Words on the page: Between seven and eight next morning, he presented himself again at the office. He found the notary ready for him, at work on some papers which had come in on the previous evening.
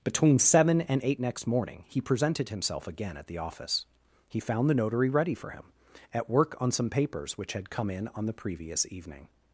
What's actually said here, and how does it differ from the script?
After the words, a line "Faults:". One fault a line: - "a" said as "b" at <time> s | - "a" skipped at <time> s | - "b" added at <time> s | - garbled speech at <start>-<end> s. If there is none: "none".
Between seven and eight next morning, he presented himself again at the office. He found the notary ready for him, at work on some papers which had come in on the previous evening.
Faults:
none